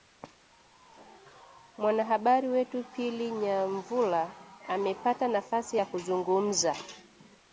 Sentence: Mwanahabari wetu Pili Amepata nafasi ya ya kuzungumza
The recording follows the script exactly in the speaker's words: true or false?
false